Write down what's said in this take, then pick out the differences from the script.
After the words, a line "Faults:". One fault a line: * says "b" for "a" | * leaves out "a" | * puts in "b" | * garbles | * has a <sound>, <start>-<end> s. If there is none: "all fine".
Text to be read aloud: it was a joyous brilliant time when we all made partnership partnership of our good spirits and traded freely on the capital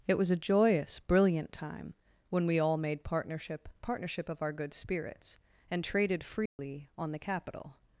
it was a joyous brilliant time when we all made partnership partnership of our good spirits and traded freely on the capital
Faults:
* has a dropout, 6.5-6.6 s